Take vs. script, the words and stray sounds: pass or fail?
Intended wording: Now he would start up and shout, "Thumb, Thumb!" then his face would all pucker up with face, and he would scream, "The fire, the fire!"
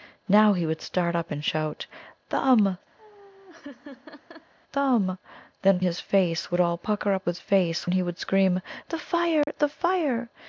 fail